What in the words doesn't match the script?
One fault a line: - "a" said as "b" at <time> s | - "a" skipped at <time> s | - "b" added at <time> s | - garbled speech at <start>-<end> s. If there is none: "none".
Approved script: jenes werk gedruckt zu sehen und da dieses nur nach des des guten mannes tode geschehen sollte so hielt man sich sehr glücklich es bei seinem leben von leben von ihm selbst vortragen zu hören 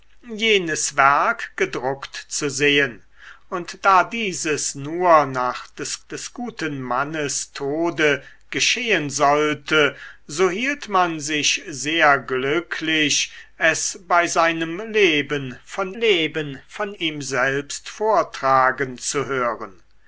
none